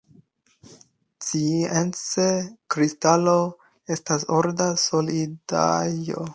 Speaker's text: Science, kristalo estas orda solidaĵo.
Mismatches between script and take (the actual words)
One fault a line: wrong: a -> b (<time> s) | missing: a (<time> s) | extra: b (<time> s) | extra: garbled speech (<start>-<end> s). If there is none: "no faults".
no faults